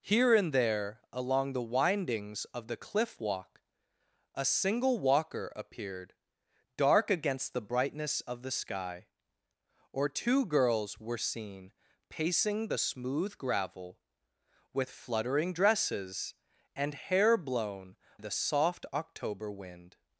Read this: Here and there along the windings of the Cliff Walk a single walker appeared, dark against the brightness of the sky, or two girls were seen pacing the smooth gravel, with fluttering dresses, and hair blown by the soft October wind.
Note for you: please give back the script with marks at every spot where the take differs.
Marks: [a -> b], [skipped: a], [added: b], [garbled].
Here and there along the windings of the Cliff Walk a single walker appeared, dark against the brightness of the sky, or two girls were seen pacing the smooth gravel, with fluttering dresses, and hair blown [skipped: by] the soft October wind.